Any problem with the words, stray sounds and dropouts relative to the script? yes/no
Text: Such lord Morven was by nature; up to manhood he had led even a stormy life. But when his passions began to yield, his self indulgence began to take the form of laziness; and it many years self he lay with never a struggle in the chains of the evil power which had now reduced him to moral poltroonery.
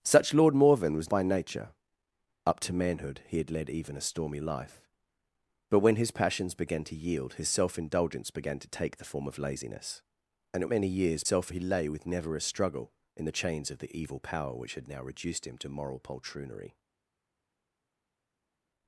no